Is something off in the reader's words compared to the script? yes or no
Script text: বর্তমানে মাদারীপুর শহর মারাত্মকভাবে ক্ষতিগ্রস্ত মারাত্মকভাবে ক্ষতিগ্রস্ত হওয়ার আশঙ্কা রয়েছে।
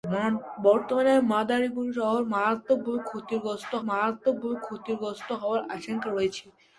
no